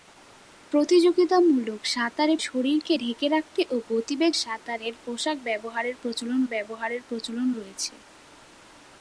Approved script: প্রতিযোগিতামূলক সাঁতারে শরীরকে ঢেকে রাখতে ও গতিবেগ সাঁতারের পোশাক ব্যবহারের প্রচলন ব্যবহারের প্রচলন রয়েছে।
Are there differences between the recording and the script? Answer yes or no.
no